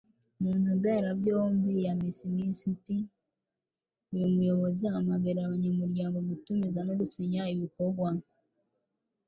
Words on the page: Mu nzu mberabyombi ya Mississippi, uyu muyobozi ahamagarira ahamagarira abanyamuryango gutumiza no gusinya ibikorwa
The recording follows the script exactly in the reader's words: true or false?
false